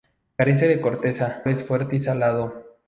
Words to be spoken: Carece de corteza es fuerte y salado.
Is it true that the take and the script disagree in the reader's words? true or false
false